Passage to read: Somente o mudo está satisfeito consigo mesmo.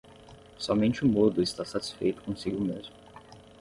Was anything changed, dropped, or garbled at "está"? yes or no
no